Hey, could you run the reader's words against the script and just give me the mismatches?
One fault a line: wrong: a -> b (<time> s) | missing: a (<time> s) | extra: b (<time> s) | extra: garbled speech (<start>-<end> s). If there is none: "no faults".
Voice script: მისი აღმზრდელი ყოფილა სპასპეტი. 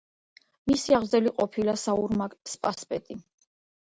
extra: საურმაგ (1.8 s)